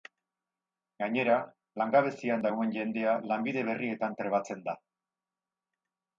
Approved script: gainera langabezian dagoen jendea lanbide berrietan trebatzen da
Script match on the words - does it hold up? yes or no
yes